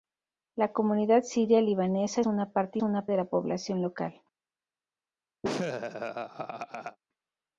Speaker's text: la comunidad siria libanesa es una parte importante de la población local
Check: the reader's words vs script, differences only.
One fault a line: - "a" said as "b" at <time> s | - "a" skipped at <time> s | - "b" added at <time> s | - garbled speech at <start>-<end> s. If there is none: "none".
- "es" skipped at 2.2 s
- "importante" said as "una" at 2.8 s